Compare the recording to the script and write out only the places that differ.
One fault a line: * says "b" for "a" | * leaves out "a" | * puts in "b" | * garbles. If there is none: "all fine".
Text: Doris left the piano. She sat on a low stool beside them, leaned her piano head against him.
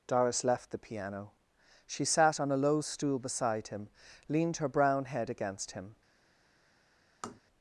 * says "him" for "them"
* says "brown" for "piano"